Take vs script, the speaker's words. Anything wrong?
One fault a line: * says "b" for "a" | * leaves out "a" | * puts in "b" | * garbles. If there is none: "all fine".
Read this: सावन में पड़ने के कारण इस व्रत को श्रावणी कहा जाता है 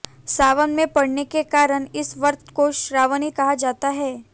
all fine